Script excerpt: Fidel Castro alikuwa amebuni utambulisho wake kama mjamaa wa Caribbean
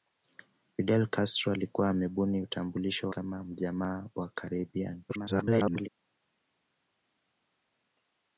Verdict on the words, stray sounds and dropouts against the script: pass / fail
fail